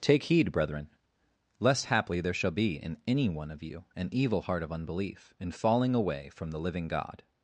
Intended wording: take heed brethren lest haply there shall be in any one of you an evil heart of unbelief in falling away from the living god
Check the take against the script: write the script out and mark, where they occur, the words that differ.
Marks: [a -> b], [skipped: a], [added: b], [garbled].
take heed brethren lest haply there shall be in any one of you an evil heart of unbelief in falling away from the living god